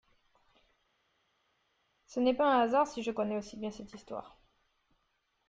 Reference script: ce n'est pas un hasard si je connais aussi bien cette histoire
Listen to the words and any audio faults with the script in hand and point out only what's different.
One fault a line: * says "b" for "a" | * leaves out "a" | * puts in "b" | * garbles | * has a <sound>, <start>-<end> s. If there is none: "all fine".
all fine